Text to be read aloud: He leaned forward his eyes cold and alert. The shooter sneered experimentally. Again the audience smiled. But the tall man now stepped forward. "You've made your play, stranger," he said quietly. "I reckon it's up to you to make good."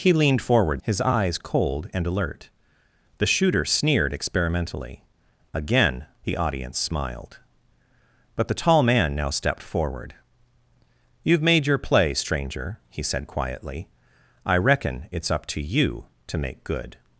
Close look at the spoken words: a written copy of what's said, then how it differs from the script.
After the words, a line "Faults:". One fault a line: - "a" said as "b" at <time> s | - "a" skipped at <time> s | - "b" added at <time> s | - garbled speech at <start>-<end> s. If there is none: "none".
He leaned forward his eyes cold and alert. The shooter sneered experimentally. Again the audience smiled. But the tall man now stepped forward. "You've made your play, stranger," he said quietly. "I reckon it's up to you to make good."
Faults:
none